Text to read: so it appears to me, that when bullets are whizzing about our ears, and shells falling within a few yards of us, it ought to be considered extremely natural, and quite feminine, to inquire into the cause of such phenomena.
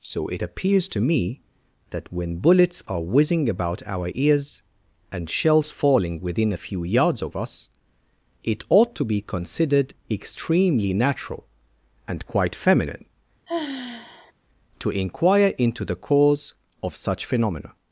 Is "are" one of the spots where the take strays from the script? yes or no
no